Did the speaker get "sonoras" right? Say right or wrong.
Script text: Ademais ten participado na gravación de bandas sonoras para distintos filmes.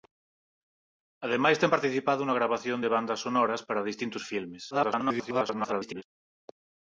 right